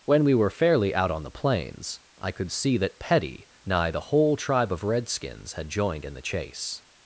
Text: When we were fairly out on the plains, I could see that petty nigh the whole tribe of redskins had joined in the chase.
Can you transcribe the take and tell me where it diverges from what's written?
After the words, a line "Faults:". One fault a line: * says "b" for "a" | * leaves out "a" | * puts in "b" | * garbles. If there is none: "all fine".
When we were fairly out on the plains, I could see that petty nigh the whole tribe of redskins had joined in the chase.
Faults:
all fine